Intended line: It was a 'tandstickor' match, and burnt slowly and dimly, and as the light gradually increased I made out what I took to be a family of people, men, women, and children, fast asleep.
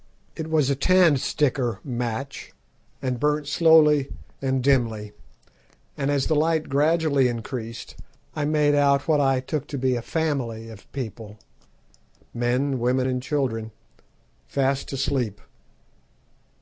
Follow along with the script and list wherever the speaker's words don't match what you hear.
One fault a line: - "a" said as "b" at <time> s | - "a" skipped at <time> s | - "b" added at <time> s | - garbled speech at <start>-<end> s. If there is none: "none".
none